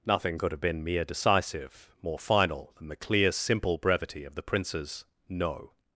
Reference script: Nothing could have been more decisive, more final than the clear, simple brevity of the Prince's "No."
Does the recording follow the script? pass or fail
fail